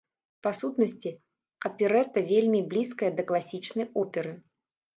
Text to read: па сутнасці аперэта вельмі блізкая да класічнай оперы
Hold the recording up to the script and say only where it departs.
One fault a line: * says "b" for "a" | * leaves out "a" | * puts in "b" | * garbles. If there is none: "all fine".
all fine